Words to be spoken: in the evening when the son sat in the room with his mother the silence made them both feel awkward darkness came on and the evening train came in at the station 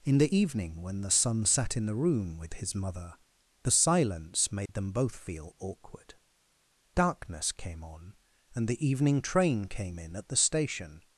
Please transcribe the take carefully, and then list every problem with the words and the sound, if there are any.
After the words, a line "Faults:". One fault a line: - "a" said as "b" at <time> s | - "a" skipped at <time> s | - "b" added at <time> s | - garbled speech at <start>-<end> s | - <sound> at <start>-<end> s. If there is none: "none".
in the evening when the son sat in the room with his mother the silence made them both feel awkward darkness came on and the evening train came in at the station
Faults:
- dropout at 4.7-4.7 s